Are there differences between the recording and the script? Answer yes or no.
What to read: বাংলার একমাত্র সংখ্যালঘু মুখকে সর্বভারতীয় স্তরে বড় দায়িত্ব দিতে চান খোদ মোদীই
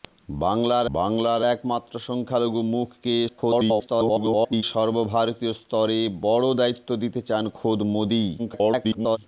yes